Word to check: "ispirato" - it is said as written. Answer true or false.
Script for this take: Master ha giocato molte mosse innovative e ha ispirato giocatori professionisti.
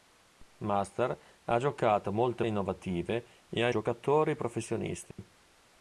false